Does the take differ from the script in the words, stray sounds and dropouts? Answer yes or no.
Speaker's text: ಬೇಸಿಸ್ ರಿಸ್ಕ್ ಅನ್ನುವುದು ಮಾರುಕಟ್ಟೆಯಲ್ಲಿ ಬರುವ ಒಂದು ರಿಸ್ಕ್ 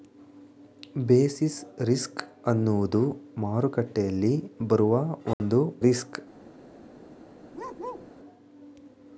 yes